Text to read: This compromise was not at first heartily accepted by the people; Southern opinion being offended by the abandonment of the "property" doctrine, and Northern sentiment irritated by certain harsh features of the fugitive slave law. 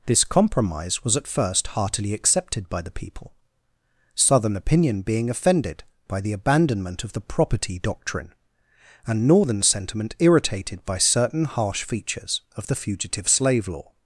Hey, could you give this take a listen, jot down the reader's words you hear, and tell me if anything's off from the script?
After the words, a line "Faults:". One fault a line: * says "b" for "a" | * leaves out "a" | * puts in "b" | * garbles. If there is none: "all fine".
This compromise was at first heartily accepted by the people; Southern opinion being offended by the abandonment of the "property" doctrine, and Northern sentiment irritated by certain harsh features of the fugitive slave law.
Faults:
* leaves out "not"